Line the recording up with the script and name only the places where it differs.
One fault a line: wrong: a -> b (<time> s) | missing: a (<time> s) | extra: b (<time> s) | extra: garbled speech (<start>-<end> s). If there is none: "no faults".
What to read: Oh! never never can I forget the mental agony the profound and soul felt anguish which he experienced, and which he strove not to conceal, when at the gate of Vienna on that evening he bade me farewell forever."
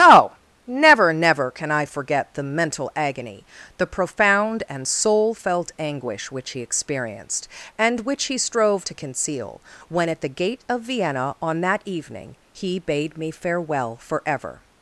missing: not (8.9 s)